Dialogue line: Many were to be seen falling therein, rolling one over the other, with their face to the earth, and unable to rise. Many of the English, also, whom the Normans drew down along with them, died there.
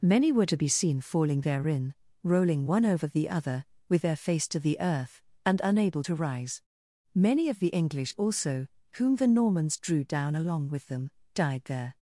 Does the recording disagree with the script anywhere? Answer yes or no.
no